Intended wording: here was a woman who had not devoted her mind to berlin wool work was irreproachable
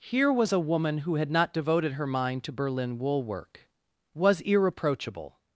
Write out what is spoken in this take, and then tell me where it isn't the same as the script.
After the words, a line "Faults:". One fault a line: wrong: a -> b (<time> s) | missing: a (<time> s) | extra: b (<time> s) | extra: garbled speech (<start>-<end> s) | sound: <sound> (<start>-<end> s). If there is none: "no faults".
here was a woman who had not devoted her mind to berlin wool work was irreproachable
Faults:
no faults